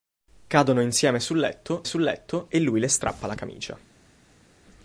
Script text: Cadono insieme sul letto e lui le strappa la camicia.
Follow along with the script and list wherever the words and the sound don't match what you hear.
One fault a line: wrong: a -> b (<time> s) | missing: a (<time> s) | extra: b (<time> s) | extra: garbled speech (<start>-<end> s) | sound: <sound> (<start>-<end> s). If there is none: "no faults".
extra: sul letto (1.8 s)